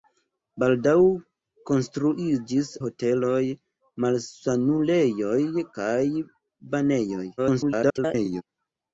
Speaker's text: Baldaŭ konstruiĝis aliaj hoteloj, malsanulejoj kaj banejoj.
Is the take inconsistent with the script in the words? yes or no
yes